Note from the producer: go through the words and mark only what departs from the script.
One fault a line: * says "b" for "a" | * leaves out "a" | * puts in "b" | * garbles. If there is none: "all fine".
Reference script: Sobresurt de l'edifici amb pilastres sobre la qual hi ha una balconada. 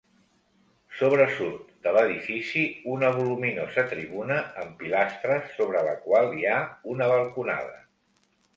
* puts in "una voluminosa tribuna"